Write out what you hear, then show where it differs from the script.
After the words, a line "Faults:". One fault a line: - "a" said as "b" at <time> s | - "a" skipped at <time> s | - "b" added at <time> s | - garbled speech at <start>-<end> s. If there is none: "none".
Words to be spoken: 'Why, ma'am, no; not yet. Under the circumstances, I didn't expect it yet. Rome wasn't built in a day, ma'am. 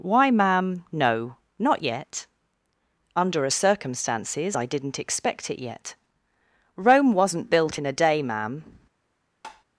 'Why, ma'am, no; not yet. Under a circumstances, I didn't expect it yet. Rome wasn't built in a day, ma'am.
Faults:
- "the" said as "a" at 3.4 s